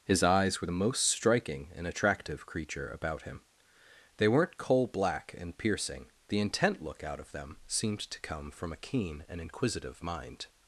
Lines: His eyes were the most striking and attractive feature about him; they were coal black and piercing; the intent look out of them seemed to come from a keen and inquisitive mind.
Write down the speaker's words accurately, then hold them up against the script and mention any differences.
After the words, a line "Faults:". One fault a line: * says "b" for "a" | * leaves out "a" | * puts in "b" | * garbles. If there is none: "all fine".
His eyes were the most striking and attractive creature about him; they weren't coal black and piercing; the intent look out of them seemed to come from a keen and inquisitive mind.
Faults:
* says "creature" for "feature"
* says "weren't" for "were"